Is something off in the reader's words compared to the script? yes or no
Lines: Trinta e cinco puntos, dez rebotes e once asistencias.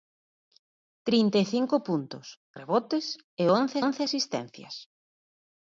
yes